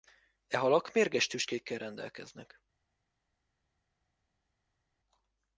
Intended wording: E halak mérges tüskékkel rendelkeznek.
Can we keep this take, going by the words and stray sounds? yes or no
yes